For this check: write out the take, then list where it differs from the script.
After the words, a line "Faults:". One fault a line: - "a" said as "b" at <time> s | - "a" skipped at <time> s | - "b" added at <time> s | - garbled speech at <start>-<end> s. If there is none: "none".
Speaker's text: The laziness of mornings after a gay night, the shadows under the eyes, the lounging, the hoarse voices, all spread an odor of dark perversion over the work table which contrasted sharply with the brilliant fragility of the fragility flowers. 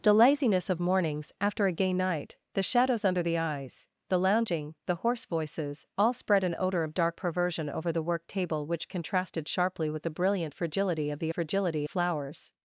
The laziness of mornings after a gay night, the shadows under the eyes, the lounging, the hoarse voices, all spread an odor of dark perversion over the work table which contrasted sharply with the brilliant fragility of the fragility flowers.
Faults:
none